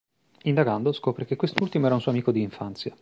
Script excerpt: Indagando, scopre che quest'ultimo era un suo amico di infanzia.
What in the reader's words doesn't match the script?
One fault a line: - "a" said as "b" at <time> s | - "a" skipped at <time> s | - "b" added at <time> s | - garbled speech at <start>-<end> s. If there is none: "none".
none